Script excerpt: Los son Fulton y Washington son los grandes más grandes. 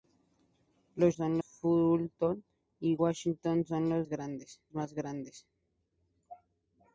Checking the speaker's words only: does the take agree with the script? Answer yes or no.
yes